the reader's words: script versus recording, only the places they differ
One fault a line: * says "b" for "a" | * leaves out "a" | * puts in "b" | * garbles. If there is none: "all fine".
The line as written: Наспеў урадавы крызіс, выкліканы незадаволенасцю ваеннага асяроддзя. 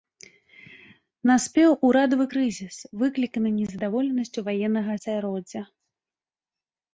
all fine